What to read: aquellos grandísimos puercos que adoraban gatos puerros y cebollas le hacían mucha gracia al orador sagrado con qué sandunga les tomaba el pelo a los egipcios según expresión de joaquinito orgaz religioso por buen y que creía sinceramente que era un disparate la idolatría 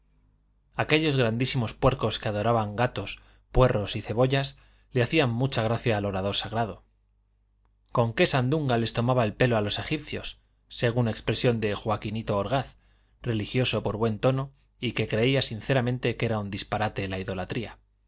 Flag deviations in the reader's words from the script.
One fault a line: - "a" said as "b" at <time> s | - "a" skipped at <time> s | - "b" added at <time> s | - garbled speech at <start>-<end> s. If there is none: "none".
- "tono" added at 14.2 s